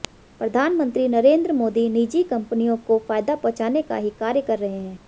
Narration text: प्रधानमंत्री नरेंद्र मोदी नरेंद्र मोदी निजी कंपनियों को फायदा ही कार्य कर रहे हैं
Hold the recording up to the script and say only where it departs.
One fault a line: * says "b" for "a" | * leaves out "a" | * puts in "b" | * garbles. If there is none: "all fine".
* leaves out "नरेंद्र मोदी"
* puts in "पहुंचाने का"